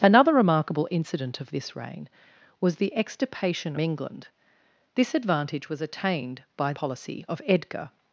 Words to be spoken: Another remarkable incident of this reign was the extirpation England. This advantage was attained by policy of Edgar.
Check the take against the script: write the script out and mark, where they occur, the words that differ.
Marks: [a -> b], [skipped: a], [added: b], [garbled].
Another remarkable incident of this reign was the extirpation England. This advantage was attained by policy of Edgar.